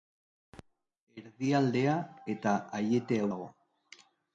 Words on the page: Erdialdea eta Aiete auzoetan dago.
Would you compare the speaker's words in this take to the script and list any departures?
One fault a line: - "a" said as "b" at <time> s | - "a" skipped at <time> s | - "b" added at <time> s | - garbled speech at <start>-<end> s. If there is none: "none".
- "auzoetan" skipped at 3.2 s